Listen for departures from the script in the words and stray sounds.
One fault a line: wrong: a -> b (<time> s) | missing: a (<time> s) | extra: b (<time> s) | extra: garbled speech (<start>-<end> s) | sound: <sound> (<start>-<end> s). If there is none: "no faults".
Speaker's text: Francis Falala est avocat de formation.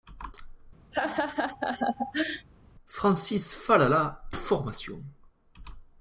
sound: laugh (0.9-2.5 s)
missing: est avocat de (4.3 s)